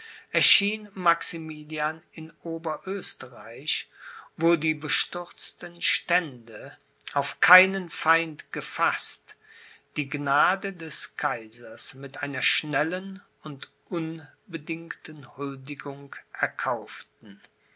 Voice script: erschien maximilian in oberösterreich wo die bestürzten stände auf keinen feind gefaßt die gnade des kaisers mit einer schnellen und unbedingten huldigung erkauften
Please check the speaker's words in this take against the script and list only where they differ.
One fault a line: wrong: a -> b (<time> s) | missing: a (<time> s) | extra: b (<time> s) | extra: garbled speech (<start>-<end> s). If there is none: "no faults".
no faults